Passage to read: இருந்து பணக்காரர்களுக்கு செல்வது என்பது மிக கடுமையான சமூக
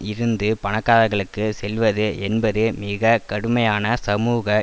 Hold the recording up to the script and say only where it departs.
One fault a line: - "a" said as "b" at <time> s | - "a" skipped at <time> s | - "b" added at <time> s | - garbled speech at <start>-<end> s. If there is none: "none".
none